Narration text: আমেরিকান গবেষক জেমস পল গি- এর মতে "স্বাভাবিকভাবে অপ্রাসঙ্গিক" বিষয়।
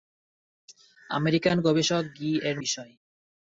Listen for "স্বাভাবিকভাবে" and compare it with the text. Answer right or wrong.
wrong